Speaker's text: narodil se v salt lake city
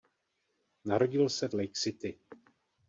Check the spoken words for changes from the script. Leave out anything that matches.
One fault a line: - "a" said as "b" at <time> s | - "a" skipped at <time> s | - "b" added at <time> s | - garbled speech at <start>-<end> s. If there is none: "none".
- "salt" skipped at 1.6 s